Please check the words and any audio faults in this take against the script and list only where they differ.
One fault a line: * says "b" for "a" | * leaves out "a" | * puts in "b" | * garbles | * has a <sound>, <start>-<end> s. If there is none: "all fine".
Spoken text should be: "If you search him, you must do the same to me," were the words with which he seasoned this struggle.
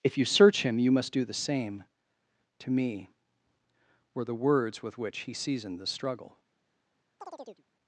* says "the" for "this"
* has a chirp, 7.2-7.6 s